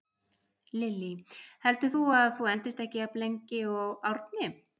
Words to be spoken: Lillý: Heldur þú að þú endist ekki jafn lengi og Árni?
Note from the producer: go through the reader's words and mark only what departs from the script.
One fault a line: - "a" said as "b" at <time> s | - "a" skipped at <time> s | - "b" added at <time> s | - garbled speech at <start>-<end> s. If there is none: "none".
none